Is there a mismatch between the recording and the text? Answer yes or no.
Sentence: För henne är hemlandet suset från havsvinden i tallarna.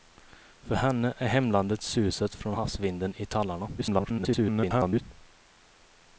yes